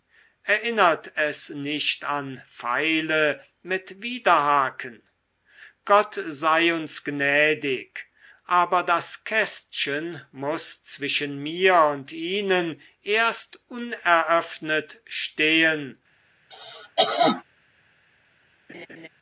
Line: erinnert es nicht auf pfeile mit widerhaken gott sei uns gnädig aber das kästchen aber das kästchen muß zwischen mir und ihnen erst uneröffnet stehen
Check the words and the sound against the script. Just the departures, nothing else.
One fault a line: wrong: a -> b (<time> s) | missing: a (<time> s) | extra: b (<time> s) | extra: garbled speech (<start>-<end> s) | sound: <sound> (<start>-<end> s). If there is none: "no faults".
wrong: auf -> an (2.0 s)
missing: aber das kästchen (10.2 s)
sound: cough (16.5-17.4 s)
sound: laugh (18.7-19.1 s)